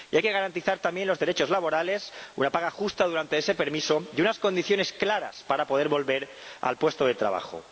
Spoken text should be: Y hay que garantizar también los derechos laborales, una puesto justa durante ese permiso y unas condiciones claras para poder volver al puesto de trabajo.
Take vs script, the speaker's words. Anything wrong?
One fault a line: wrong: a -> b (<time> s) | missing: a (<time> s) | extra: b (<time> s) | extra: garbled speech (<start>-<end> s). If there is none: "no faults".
wrong: puesto -> paga (2.5 s)